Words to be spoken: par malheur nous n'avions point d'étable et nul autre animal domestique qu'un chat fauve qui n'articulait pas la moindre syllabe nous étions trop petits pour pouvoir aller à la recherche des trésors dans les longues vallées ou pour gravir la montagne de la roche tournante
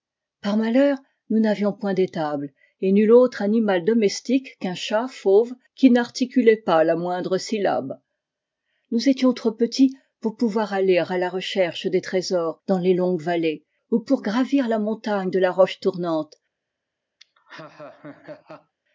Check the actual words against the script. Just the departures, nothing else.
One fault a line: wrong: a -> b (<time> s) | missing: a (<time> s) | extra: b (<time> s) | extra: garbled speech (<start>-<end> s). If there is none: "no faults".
no faults